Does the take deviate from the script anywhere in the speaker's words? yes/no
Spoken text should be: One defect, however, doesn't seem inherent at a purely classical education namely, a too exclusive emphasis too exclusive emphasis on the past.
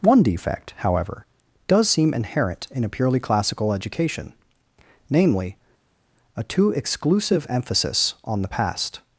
yes